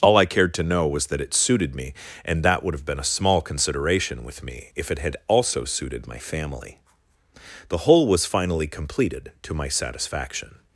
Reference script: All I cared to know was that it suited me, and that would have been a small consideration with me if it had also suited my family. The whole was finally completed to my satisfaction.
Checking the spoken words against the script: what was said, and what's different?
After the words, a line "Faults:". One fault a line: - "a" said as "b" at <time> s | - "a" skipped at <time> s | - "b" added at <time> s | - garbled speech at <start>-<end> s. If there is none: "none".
All I cared to know was that it suited me, and that would have been a small consideration with me if it had also suited my family. The whole was finally completed to my satisfaction.
Faults:
none